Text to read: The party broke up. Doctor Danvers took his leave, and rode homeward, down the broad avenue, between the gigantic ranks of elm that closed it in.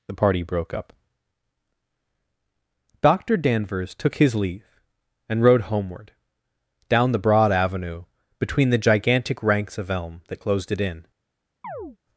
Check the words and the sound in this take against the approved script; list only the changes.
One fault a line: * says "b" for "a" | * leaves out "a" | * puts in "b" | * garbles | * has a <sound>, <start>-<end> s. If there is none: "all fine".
* has a chirp, 11.6-12.0 s